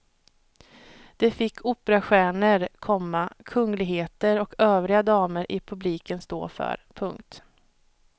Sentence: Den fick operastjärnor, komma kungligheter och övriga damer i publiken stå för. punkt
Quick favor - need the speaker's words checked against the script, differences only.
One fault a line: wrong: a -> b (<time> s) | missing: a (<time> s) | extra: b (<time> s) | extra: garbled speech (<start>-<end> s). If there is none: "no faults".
wrong: Den -> Det (1.2 s)